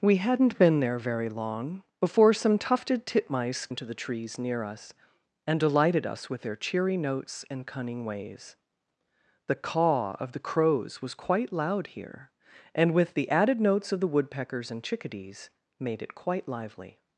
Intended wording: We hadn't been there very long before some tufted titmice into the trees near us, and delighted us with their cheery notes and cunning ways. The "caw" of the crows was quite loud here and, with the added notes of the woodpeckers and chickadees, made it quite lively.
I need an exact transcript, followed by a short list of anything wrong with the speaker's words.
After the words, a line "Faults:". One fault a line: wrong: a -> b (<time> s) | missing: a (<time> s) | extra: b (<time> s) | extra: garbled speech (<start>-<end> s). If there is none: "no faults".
We hadn't been there very long before some tufted titmice into the trees near us, and delighted us with their cheery notes and cunning ways. The "caw" of the crows was quite loud here and, with the added notes of the woodpeckers and chickadees, made it quite lively.
Faults:
no faults